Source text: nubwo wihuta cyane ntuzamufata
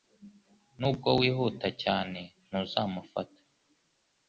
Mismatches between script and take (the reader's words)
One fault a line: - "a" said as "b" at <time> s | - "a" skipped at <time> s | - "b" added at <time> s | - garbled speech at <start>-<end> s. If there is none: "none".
none